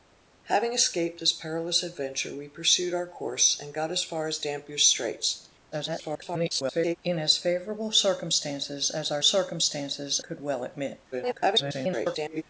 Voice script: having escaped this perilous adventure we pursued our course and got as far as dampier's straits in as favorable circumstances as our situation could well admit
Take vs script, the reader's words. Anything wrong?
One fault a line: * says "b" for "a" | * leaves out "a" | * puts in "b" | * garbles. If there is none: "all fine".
* garbles
* says "circumstances" for "situation"
* garbles